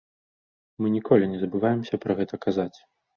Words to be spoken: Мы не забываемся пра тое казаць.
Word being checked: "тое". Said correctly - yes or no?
no